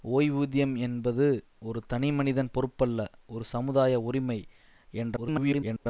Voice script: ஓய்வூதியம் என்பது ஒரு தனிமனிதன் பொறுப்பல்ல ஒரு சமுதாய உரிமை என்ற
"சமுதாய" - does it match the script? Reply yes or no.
yes